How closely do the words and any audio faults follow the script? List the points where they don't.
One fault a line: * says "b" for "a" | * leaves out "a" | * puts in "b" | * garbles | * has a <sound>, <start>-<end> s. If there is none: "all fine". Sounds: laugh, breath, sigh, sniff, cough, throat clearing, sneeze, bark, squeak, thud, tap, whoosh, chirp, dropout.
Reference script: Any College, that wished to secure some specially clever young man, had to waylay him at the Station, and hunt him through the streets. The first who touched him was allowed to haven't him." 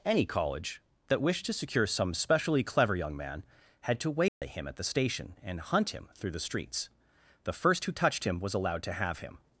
* has a dropout, 4.3-4.4 s
* says "have" for "haven't"